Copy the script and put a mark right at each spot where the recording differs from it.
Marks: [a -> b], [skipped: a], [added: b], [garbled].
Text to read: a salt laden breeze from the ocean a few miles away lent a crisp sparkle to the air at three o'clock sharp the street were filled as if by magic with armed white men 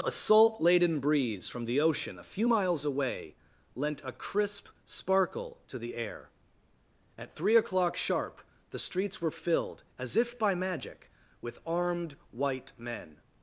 a salt laden breeze from the ocean a few miles away lent a crisp sparkle to the air at three o'clock sharp the [street -> streets] were filled as if by magic with armed white men